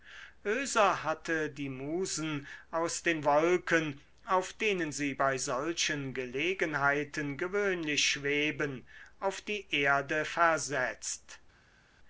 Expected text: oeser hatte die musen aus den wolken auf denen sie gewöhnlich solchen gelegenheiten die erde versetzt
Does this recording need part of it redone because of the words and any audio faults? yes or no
yes